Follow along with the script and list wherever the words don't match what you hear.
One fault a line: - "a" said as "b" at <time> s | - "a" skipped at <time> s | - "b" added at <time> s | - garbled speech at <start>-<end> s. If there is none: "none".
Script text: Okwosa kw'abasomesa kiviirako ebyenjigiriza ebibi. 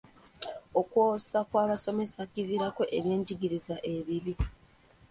none